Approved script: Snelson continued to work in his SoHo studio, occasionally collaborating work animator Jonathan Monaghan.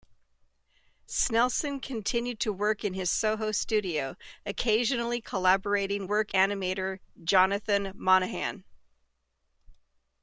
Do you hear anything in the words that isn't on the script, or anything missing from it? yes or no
no